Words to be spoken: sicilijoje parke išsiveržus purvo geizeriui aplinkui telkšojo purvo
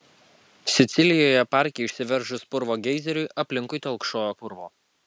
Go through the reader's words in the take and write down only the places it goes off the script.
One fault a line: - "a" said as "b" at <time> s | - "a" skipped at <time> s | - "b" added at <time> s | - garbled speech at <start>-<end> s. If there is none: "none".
none